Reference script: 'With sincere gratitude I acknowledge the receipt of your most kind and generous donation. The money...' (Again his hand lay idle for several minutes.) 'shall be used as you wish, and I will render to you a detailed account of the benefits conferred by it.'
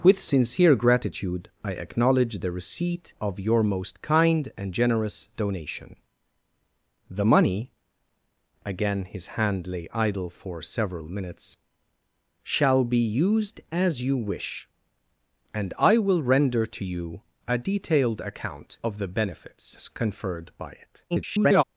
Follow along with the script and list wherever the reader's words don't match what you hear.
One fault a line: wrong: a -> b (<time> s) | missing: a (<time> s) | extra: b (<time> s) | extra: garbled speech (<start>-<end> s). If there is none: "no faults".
extra: garbled speech (21.1-21.6 s)